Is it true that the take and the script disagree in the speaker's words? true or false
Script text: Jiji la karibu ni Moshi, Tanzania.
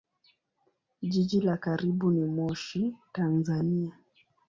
false